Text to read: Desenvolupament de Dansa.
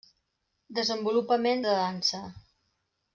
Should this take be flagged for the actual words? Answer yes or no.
no